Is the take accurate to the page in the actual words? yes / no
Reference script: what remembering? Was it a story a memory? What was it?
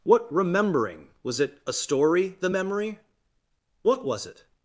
no